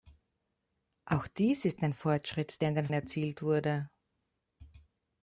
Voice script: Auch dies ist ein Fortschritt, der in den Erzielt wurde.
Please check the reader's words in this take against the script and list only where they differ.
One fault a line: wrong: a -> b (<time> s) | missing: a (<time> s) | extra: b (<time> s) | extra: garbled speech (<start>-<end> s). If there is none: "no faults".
no faults